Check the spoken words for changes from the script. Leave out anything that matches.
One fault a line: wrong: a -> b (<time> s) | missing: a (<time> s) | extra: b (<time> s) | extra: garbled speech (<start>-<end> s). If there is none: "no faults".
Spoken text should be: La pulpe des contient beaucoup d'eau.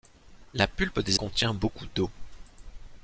no faults